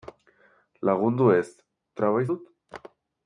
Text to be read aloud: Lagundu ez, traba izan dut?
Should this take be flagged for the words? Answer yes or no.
yes